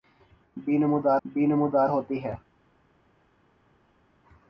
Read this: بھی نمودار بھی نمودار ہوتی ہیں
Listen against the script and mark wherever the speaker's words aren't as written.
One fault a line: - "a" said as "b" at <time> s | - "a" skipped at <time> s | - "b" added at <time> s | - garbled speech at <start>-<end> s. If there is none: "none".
none